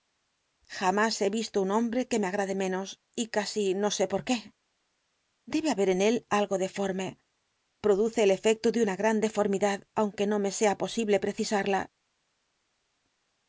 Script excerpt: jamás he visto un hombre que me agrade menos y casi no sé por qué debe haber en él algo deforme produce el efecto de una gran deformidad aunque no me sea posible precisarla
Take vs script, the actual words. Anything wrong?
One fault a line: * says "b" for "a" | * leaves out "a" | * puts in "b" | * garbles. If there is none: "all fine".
all fine